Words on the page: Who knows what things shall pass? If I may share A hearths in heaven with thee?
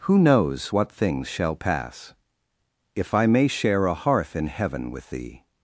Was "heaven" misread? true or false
false